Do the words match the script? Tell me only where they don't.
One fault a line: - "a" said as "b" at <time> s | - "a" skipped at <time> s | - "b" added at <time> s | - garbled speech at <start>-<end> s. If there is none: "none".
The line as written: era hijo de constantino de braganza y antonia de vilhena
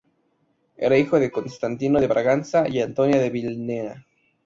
none